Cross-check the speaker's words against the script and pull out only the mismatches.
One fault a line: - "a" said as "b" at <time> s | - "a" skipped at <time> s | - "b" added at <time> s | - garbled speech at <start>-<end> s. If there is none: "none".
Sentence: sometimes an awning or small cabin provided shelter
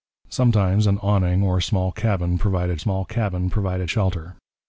- "small cabin provided" added at 2.8 s